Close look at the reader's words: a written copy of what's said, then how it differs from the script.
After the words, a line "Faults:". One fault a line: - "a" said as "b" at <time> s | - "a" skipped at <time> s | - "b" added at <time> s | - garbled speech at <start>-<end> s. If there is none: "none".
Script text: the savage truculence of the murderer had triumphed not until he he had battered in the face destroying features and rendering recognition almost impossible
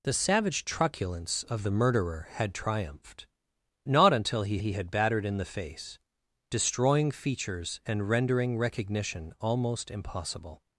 the savage truculence of the murderer had triumphed not until he he had battered in the face destroying features and rendering recognition almost impossible
Faults:
none